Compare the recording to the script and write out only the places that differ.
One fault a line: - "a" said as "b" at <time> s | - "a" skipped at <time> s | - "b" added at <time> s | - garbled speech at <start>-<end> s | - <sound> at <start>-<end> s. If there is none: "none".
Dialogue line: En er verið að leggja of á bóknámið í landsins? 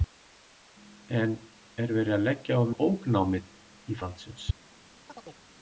- chirp at 5.1-5.4 s